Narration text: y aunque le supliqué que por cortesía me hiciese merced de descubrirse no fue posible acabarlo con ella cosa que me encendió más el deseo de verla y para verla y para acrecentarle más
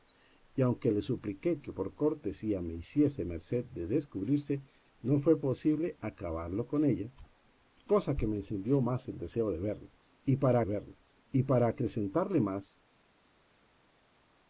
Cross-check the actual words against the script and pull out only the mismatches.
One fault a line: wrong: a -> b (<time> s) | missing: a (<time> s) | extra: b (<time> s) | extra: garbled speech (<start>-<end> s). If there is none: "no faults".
no faults